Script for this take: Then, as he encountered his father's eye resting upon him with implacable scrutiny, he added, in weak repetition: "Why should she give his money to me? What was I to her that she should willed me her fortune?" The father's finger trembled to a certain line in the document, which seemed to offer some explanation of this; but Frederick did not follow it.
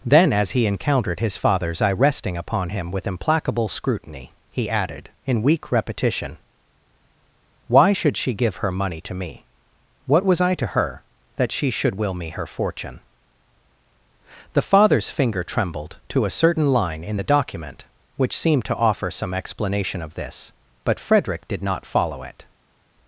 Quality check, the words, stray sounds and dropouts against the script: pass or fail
fail